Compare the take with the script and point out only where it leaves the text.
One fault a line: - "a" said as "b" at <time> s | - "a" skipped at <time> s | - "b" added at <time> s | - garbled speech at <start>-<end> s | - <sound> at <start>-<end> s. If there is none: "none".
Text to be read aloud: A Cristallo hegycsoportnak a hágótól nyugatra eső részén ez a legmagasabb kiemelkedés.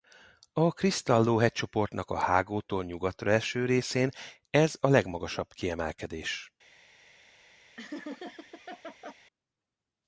- laugh at 7.8-9.1 s